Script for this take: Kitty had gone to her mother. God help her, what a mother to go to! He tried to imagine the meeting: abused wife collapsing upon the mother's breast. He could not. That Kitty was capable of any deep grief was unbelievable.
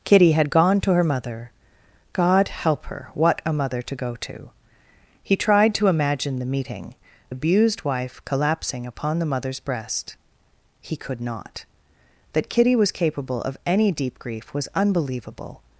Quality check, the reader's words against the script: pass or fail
pass